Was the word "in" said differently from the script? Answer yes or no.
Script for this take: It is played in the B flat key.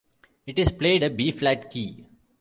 yes